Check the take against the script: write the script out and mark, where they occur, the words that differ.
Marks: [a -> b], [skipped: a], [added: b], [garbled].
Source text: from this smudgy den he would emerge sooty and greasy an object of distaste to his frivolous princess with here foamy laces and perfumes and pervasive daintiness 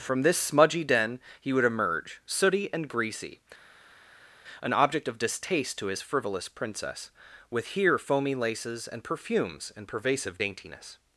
from this smudgy den he would emerge sooty and greasy an object of distaste to his frivolous princess with here foamy laces and perfumes and pervasive daintiness